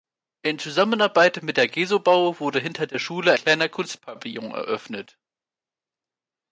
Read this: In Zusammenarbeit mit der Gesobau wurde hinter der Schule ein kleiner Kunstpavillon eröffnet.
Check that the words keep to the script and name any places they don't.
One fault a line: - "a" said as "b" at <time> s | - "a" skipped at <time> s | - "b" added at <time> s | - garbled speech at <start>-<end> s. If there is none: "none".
- "ein" skipped at 3.3 s